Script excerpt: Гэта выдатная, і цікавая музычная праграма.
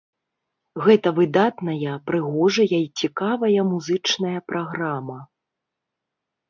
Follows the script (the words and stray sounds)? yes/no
no